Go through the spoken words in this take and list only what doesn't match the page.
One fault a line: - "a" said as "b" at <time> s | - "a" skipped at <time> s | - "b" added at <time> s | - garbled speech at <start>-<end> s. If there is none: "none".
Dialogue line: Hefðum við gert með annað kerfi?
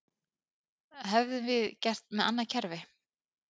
none